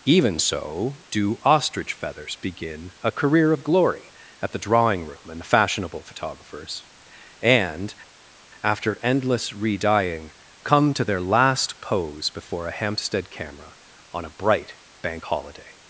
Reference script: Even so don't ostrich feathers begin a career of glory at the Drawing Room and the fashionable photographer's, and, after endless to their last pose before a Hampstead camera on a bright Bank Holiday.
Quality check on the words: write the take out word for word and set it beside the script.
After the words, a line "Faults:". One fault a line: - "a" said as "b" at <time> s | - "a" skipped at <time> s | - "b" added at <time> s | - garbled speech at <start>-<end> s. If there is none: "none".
Even so do ostrich feathers begin a career of glory at the Drawing Room and the fashionable photographer's, and, after endless re dyeing, come to their last pose before a Hampstead camera on a bright Bank Holiday.
Faults:
- "don't" said as "do" at 1.1 s
- "re dyeing come" added at 9.5 s